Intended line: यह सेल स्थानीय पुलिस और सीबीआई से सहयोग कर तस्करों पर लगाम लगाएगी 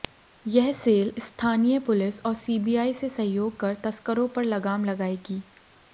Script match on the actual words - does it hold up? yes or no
yes